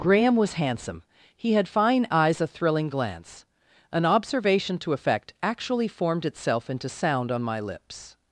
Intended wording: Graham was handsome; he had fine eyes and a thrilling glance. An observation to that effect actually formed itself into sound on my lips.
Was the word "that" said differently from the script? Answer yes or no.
yes